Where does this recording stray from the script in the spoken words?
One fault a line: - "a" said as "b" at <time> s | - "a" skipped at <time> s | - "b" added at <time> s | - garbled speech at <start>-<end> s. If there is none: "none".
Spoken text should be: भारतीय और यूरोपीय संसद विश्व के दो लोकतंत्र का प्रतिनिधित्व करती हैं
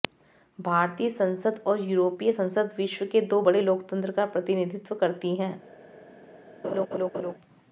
- "संसद" added at 1.1 s
- "बड़े" added at 3.4 s